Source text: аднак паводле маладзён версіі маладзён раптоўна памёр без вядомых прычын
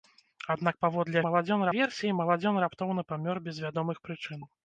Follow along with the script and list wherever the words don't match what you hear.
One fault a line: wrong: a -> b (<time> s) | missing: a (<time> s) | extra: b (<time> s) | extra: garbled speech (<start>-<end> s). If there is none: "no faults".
no faults